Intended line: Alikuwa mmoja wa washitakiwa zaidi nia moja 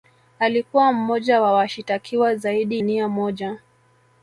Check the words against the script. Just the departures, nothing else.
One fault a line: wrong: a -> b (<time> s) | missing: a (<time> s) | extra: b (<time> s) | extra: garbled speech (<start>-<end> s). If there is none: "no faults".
no faults